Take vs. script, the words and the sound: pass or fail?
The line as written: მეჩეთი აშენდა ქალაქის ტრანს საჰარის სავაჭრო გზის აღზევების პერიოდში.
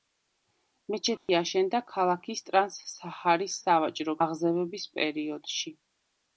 fail